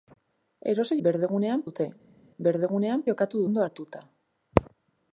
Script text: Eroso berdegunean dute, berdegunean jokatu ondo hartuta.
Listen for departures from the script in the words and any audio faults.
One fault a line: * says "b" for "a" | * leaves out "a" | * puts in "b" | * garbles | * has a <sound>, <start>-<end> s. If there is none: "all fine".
all fine